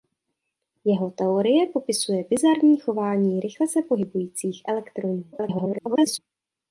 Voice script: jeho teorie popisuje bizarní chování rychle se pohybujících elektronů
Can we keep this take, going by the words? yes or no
no